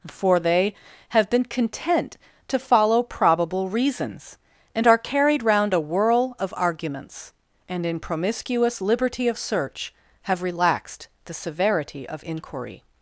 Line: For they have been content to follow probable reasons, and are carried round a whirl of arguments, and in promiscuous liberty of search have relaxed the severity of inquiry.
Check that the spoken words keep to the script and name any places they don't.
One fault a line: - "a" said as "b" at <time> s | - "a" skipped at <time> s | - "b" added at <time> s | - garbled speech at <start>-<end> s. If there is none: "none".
none